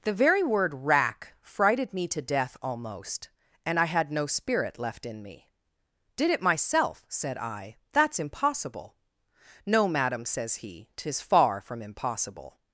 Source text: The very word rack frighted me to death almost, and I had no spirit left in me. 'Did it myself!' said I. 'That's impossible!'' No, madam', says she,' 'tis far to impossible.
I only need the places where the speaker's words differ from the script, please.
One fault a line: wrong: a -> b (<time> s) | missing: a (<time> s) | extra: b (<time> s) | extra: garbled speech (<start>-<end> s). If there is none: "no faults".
wrong: she -> he (10.6 s)
wrong: to -> from (11.6 s)